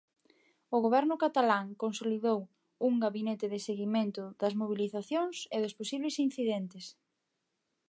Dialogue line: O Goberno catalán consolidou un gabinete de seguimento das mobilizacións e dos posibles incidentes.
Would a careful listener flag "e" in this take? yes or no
no